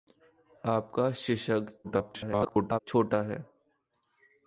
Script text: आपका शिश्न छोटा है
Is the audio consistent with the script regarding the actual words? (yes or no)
no